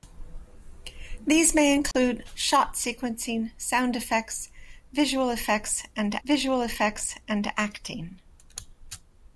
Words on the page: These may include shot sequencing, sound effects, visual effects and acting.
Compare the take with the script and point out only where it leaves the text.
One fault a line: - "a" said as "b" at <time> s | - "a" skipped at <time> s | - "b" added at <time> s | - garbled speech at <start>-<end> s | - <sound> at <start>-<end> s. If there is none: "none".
- dropout at 1.9-1.9 s
- "visual effects and" added at 6.2 s